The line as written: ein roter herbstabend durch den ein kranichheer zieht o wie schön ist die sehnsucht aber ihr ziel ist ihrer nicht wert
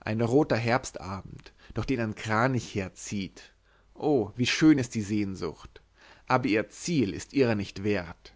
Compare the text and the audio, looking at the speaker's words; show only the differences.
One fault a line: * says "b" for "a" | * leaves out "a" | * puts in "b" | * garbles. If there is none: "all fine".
all fine